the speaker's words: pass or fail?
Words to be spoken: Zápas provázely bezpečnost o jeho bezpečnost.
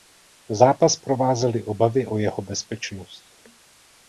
fail